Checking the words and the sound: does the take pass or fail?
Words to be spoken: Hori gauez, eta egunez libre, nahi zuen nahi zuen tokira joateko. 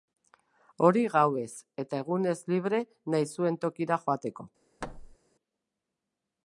fail